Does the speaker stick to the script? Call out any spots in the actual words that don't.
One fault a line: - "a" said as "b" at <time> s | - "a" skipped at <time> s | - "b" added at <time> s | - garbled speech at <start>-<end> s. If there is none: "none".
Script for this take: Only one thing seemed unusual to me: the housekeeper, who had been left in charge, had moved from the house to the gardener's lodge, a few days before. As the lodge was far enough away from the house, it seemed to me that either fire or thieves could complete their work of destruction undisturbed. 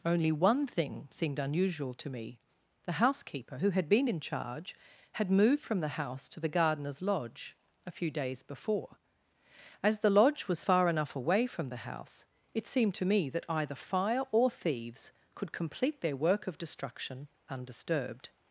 - "left" skipped at 4.1 s